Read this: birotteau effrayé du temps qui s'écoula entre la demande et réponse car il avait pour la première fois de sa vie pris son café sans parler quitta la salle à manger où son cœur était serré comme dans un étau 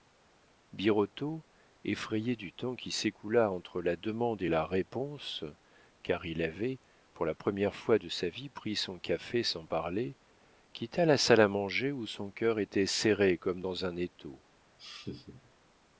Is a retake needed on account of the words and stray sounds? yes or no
yes